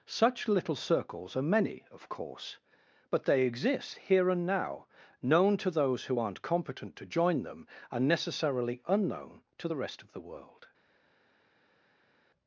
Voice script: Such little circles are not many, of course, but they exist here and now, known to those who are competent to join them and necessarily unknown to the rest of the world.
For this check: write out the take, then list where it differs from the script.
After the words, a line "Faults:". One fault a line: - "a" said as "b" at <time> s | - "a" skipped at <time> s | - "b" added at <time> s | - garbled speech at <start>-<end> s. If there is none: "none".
Such little circles are many, of course, but they exist here and now, known to those who aren't competent to join them and necessarily unknown to the rest of the world.
Faults:
- "not" skipped at 1.4 s
- "are" said as "aren't" at 6.2 s